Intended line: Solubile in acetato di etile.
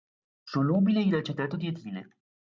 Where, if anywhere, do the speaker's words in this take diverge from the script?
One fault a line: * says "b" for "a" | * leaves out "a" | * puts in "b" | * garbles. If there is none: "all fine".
all fine